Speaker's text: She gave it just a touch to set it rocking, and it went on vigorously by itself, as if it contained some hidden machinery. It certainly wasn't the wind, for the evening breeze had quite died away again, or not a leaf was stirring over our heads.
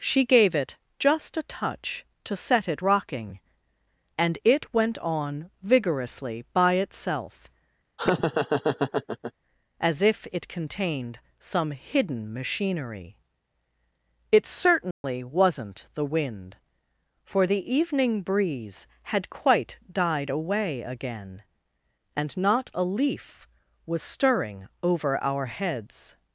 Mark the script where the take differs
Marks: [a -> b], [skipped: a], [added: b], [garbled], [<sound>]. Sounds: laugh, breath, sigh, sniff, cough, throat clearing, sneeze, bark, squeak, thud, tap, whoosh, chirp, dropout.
She gave it just a touch to set it rocking, and it went on vigorously by itself, [laugh] as if it contained some hidden machinery. It certainly [dropout] wasn't the wind, for the evening breeze had quite died away again, [or -> and] not a leaf was stirring over our heads.